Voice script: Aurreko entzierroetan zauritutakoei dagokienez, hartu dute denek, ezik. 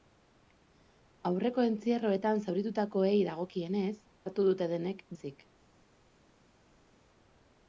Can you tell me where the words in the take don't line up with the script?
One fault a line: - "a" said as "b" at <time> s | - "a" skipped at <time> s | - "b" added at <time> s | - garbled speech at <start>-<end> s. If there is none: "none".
none